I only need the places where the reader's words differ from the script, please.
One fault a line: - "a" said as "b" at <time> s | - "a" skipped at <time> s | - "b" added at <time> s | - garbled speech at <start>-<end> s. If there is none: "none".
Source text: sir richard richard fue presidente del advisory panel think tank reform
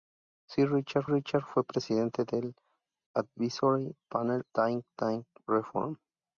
none